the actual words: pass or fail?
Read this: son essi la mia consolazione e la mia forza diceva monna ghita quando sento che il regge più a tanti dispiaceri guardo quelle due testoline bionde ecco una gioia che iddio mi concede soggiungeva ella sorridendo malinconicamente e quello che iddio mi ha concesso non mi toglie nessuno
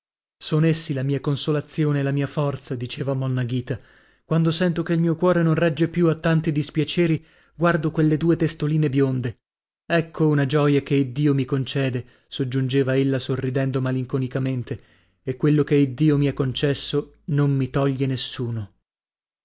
fail